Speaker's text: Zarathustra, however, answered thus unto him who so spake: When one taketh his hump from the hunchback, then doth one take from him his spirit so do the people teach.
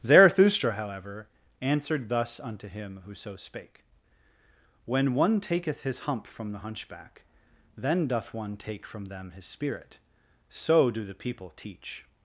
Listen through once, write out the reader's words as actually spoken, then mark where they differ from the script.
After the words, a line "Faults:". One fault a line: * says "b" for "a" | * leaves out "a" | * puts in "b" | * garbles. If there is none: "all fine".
Zarathustra, however, answered thus unto him who so spake: When one taketh his hump from the hunchback, then doth one take from them his spirit so do the people teach.
Faults:
* says "them" for "him"